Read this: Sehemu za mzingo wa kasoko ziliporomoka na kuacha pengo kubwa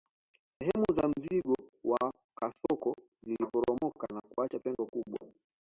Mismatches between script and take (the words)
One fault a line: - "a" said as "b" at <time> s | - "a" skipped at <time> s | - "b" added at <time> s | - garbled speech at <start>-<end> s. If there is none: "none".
none